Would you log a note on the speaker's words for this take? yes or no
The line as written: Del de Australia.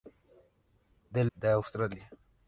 no